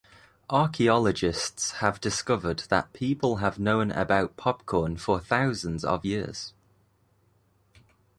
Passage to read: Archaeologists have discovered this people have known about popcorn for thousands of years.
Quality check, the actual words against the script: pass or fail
fail